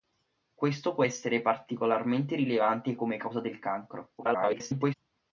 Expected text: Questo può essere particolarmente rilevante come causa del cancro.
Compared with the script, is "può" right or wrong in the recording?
right